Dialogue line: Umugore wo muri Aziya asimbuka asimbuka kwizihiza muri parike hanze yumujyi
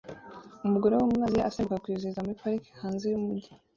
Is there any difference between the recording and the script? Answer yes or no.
yes